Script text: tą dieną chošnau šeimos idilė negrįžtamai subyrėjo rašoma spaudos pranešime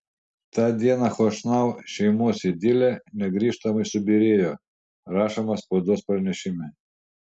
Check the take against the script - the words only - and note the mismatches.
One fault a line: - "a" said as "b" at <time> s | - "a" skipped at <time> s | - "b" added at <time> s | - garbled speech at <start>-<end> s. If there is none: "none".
none